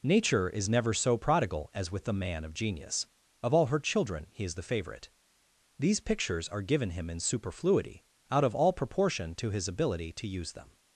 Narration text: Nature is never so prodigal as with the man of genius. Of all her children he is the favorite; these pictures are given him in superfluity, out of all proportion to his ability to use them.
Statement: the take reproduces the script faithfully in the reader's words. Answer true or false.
true